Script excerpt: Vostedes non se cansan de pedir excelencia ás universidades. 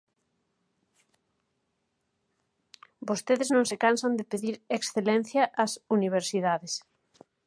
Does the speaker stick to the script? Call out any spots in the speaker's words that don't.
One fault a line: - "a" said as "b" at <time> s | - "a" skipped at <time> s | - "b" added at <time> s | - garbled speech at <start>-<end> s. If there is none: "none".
none